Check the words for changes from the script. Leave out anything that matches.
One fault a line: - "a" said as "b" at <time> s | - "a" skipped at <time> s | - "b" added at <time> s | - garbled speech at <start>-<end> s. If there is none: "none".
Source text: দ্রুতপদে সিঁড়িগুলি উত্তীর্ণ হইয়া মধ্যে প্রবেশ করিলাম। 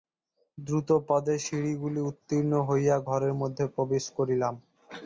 - "ঘরের" added at 3.1 s